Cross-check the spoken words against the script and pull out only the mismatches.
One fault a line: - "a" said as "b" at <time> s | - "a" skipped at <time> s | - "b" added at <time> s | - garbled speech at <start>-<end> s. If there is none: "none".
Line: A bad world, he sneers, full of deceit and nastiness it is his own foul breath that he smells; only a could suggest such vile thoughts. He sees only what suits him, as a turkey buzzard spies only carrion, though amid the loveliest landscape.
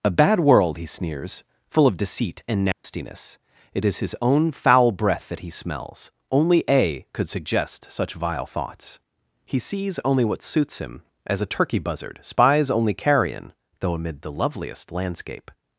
none